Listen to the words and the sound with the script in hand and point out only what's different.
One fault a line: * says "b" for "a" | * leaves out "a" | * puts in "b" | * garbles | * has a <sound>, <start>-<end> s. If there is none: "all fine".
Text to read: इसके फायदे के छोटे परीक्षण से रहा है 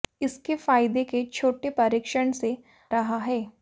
all fine